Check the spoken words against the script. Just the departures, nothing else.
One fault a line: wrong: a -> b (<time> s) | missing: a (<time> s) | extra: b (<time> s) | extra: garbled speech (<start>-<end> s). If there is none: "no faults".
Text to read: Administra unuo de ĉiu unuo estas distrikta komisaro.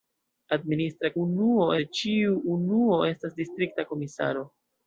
no faults